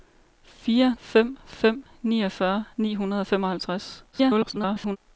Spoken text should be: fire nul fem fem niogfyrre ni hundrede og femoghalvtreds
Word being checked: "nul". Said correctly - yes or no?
no